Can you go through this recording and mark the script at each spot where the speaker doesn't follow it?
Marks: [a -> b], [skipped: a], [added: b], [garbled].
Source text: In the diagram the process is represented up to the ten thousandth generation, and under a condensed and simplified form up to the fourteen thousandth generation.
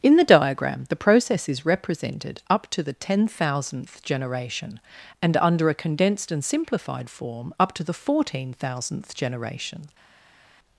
In the diagram the process is represented up to the ten thousandth generation, and under a condensed and simplified form up to the fourteen thousandth generation.